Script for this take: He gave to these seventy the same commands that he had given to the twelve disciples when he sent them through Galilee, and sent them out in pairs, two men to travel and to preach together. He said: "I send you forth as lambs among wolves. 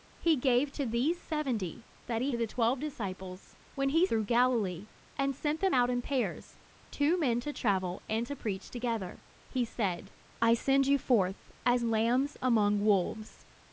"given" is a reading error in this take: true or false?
true